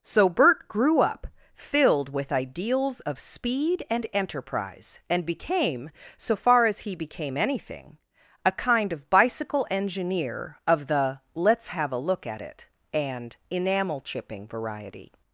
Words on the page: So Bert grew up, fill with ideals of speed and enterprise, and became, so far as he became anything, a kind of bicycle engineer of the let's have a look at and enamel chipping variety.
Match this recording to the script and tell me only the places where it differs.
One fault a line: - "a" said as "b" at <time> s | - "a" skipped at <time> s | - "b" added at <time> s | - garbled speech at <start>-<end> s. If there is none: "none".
- "fill" said as "filled" at 1.5 s
- "it" added at 12.4 s